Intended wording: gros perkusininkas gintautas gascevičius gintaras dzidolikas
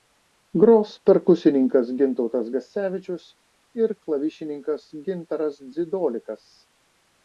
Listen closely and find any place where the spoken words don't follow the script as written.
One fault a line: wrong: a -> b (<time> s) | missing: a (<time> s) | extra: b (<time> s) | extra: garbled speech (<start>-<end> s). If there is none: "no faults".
extra: ir klavišininkas (3.8 s)